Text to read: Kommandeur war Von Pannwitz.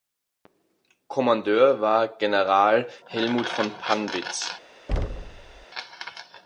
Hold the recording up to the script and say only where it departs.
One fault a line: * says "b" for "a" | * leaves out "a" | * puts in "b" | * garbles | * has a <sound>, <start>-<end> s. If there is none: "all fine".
* puts in "General Helmuth"
* has a thud, 4.9-5.7 s